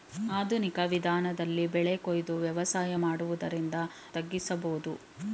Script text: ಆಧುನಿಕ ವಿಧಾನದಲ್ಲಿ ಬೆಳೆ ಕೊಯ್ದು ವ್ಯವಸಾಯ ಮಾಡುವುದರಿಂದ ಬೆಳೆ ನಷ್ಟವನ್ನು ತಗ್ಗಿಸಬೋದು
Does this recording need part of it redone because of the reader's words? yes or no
yes